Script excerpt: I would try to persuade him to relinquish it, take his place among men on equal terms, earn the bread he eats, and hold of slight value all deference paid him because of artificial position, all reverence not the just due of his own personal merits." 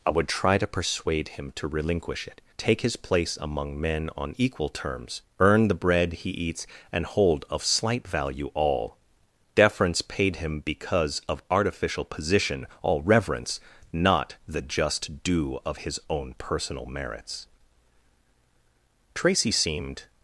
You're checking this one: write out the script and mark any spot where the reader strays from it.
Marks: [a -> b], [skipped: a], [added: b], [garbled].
I would try to persuade him to relinquish it, take his place among men on equal terms, earn the bread he eats, and hold of slight value all deference paid him because of artificial position, all reverence not the just due of his own personal merits." [added: Tracy seemed]